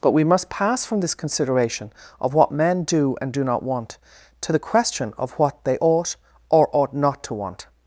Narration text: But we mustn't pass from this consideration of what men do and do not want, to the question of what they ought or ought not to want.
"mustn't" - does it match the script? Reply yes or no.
no